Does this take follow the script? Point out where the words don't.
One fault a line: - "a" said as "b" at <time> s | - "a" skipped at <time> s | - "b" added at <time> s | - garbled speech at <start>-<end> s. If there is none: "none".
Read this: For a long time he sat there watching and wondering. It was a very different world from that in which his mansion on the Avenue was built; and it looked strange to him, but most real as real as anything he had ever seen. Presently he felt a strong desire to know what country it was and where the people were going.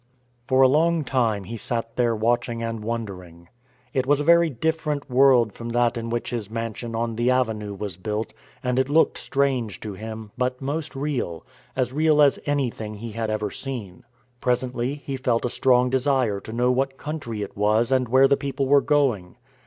none